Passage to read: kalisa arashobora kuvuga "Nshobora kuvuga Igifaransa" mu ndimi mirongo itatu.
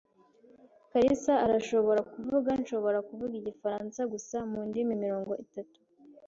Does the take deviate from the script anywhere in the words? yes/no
yes